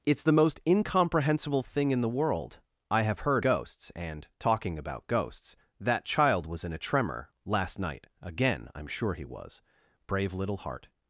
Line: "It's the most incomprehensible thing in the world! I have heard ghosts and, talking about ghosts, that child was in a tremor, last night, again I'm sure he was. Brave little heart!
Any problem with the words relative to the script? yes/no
no